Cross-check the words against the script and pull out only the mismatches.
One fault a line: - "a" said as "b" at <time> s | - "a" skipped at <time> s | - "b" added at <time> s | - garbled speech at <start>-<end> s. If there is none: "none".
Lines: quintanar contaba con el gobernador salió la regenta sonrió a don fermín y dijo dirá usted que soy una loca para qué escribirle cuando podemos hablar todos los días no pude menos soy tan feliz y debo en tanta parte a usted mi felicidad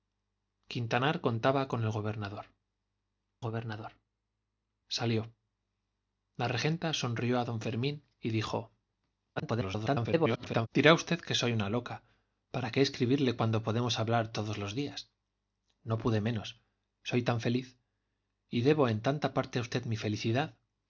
- "gobernador" added at 3.4 s
- garbled speech at 9.4-10.7 s